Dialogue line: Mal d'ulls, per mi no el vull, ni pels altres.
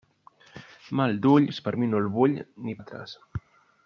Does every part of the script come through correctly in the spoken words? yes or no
no